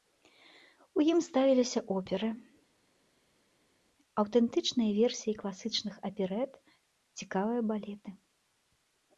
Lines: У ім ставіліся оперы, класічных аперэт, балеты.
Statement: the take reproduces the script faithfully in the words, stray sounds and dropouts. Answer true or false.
false